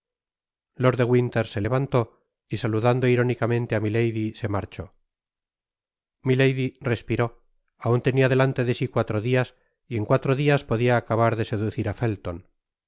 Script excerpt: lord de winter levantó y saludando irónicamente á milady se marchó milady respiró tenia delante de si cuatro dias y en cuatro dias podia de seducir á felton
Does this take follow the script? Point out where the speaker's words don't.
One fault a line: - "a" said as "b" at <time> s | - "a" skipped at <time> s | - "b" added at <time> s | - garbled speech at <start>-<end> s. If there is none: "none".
- "se" added at 1.4 s
- "aun" added at 7.9 s
- "acabar" added at 11.0 s